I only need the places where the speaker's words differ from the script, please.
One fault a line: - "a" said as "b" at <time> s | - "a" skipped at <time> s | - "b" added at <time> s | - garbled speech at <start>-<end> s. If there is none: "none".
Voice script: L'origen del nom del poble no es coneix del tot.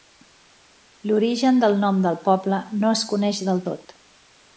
none